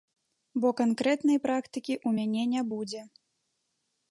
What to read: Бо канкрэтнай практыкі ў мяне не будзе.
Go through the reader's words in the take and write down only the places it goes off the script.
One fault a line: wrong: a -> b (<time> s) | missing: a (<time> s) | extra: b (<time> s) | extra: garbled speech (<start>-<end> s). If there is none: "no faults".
no faults